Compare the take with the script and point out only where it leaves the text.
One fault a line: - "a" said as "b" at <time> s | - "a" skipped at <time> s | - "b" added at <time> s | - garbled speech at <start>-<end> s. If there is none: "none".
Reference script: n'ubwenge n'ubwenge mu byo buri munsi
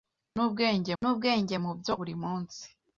none